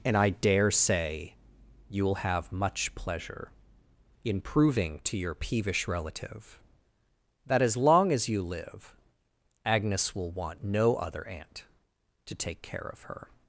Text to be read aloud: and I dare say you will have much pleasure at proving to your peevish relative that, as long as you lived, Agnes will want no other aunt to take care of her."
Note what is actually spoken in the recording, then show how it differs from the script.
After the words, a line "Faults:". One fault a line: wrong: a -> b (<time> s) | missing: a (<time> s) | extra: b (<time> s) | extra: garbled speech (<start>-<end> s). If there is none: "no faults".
and I dare say you will have much pleasure in proving to your peevish relative that, as long as you live, Agnes will want no other aunt to take care of her."
Faults:
wrong: at -> in (4.2 s)
wrong: lived -> live (8.4 s)